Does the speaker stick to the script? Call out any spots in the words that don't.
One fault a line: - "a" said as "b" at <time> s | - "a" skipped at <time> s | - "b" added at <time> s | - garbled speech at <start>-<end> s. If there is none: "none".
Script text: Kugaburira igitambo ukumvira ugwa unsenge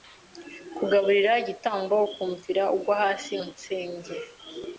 - "hasi" added at 3.0 s